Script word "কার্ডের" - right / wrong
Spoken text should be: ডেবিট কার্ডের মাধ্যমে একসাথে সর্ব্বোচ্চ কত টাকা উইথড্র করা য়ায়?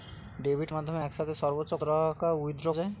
wrong